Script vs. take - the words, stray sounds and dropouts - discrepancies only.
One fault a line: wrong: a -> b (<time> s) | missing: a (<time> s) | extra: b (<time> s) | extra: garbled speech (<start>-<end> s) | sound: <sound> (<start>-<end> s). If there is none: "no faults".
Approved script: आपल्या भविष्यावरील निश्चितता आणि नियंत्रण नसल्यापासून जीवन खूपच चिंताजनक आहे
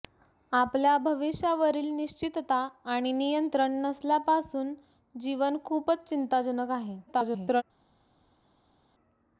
extra: garbled speech (7.1-7.6 s)